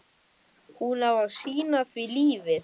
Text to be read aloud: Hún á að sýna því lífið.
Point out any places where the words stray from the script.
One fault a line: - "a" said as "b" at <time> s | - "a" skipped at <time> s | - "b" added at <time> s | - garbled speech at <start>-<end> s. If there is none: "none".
none